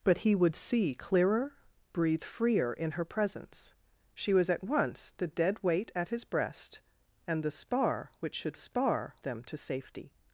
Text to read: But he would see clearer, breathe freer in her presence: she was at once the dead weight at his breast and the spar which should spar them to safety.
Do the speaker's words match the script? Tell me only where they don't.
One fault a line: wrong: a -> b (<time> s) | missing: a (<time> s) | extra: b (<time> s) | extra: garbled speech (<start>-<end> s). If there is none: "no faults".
no faults